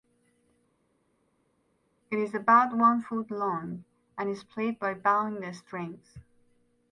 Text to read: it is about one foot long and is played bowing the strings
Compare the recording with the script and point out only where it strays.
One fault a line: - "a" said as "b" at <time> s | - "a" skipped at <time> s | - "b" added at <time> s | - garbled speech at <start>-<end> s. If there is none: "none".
- "by" added at 4.8 s